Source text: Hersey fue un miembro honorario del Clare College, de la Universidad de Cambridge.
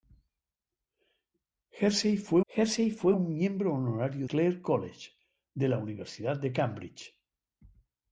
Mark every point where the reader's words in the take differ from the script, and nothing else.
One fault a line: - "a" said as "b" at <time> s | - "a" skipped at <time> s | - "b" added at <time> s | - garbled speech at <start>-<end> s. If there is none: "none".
- "hersey fue" added at 2.5 s
- "del" skipped at 4.3 s